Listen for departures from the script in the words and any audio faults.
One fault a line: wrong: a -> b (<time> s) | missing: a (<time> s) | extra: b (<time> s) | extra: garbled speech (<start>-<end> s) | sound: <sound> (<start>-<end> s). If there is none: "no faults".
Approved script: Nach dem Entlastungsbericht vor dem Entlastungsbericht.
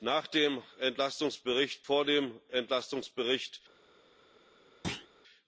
sound: thud (4.8-5.1 s)